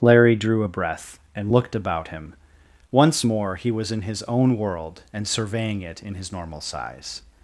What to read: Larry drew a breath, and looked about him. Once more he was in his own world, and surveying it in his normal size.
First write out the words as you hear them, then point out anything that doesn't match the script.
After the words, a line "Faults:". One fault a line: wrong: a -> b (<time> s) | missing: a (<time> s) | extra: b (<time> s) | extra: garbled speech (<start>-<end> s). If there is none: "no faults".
Larry drew a breath, and looked about him. Once more he was in his own world, and surveying it in his normal size.
Faults:
no faults